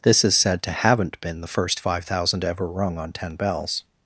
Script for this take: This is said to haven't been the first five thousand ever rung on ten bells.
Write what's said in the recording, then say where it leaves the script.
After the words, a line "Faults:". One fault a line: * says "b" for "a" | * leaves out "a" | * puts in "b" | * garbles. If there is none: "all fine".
This is said to haven't been the first five thousand ever rung on ten bells.
Faults:
all fine